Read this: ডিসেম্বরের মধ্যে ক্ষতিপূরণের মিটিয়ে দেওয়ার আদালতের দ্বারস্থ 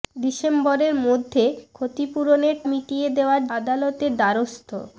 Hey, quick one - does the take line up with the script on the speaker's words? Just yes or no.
yes